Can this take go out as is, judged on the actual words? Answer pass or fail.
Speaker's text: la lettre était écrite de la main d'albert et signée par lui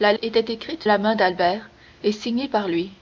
fail